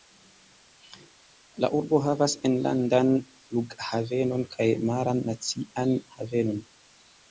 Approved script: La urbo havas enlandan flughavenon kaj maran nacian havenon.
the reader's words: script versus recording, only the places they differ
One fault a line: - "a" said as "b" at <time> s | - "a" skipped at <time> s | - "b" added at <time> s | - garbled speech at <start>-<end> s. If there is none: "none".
none